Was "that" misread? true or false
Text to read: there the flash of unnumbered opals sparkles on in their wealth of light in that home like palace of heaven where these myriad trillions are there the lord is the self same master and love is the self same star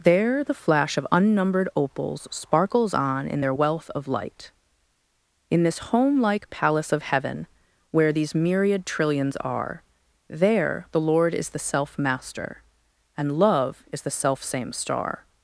true